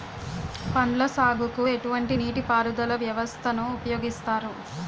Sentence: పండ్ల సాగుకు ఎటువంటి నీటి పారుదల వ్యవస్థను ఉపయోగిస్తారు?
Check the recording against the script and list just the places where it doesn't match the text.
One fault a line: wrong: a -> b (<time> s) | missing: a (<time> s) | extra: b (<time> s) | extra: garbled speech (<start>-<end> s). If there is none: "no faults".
no faults